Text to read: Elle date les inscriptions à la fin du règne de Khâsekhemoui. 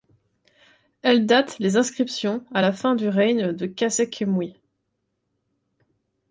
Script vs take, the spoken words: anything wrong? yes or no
no